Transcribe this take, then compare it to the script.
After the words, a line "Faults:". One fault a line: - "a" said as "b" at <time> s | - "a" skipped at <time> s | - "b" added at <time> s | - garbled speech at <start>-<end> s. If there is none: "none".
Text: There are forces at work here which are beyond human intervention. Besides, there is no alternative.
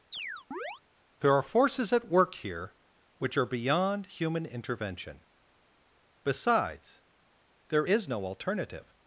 There are forces at work here which are beyond human intervention. Besides, there is no alternative.
Faults:
none